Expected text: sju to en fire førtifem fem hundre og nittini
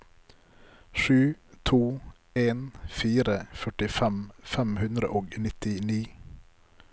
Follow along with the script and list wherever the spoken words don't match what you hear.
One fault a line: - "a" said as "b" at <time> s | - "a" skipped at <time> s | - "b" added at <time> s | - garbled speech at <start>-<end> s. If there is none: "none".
none